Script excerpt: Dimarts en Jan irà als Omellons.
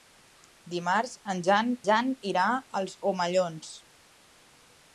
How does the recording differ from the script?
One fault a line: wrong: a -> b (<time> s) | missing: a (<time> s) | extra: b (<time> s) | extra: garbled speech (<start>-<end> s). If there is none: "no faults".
extra: Jan (1.9 s)